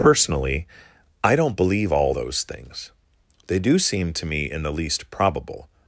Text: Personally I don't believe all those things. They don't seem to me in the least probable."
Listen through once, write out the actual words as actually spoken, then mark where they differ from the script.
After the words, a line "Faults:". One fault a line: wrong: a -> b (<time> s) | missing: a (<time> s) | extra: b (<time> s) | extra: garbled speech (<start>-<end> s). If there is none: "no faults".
Personally I don't believe all those things. They do seem to me in the least probable."
Faults:
wrong: don't -> do (3.6 s)